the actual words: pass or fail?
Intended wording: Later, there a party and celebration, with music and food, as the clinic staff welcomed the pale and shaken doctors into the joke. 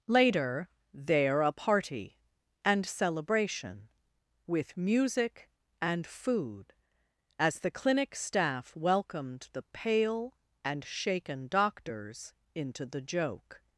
pass